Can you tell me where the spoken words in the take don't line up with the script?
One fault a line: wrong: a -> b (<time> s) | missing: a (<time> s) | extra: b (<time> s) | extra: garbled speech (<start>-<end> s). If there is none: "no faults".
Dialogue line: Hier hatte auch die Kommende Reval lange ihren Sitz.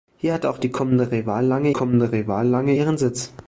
extra: Kommende Reval lange (1.7 s)